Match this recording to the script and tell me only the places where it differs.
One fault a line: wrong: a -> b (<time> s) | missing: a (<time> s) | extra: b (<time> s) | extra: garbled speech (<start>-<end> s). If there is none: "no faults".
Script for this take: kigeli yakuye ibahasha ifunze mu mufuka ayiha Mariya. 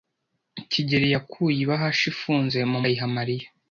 missing: mufuka (2.8 s)